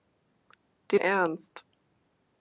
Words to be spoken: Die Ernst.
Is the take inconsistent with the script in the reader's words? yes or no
no